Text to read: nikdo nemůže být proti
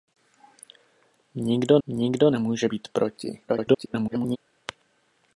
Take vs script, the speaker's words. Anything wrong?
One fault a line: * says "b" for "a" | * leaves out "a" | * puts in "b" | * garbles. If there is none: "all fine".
* puts in "nikdo"
* garbles